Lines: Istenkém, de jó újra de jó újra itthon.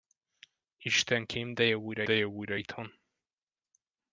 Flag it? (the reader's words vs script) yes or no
no